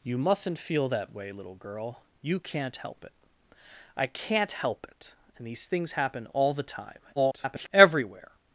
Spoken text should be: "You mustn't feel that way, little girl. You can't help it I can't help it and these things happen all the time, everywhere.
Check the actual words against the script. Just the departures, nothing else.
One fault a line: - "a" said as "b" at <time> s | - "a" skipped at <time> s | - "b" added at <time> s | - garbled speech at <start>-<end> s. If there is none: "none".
- garbled speech at 7.2-7.7 s